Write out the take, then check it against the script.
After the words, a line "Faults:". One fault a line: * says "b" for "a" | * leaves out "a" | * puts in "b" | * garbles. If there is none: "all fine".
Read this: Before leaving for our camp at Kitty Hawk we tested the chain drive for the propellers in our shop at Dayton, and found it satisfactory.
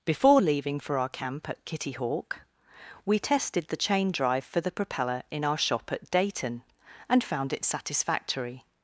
Before leaving for our camp at Kitty Hawk we tested the chain drive for the propeller in our shop at Dayton, and found it satisfactory.
Faults:
* says "propeller" for "propellers"